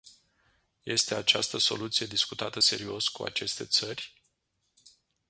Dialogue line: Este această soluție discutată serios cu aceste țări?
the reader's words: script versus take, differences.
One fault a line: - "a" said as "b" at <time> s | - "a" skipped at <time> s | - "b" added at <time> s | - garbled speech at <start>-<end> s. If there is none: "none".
none